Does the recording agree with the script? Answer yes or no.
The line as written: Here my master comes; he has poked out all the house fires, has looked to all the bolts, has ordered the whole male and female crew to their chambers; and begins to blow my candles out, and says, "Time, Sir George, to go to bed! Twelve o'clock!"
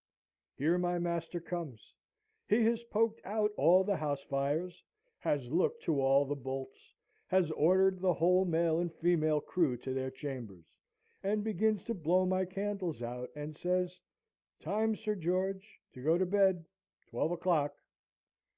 yes